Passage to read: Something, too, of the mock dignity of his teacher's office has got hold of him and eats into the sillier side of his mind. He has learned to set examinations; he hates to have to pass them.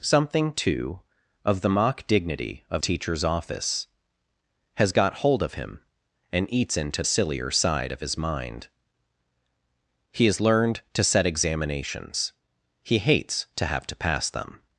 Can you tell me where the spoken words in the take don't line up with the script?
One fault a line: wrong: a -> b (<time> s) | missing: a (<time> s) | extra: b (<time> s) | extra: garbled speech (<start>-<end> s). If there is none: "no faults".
missing: his (2.8 s)
missing: the (7.0 s)